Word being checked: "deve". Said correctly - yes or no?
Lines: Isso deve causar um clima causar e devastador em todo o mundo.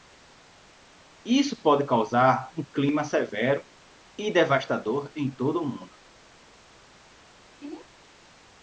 no